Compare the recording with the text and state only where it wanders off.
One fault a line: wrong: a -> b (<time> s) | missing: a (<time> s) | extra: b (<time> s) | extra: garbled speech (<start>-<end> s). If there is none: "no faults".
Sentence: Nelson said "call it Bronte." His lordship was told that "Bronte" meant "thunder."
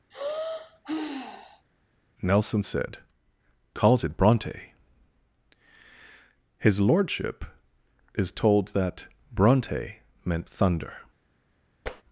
wrong: call -> calls (3.7 s)
wrong: was -> is (8.1 s)